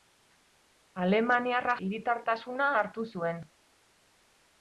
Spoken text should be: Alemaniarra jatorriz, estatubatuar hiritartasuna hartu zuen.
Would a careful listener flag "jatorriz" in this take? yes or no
yes